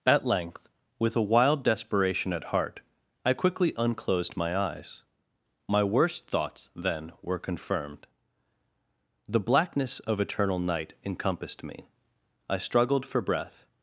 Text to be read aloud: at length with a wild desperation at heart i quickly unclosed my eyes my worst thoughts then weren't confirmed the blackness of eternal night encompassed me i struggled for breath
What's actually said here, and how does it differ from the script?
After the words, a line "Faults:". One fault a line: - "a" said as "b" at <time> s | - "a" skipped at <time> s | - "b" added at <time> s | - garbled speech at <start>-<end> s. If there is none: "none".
at length with a wild desperation at heart i quickly unclosed my eyes my worst thoughts then were confirmed the blackness of eternal night encompassed me i struggled for breath
Faults:
- "weren't" said as "were" at 7.2 s